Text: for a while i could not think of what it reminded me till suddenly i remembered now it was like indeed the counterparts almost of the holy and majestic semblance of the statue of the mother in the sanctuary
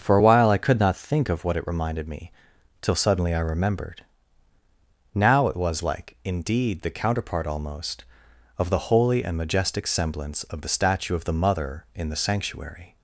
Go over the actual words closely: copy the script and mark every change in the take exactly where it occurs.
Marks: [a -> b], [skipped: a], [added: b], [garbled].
for a while i could not think of what it reminded me till suddenly i remembered now it was like indeed the [counterparts -> counterpart] almost of the holy and majestic semblance of the statue of the mother in the sanctuary